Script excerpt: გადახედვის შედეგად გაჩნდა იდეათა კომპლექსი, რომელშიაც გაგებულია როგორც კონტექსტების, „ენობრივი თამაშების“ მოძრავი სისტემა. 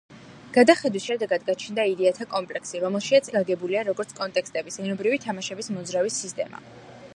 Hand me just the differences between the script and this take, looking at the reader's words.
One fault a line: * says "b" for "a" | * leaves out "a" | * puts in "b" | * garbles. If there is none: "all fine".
all fine